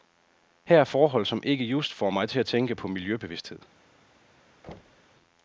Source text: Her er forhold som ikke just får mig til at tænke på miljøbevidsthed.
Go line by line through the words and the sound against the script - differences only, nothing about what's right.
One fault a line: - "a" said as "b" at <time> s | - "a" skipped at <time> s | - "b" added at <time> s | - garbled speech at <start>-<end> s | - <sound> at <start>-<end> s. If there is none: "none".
- thud at 4.6-5.2 s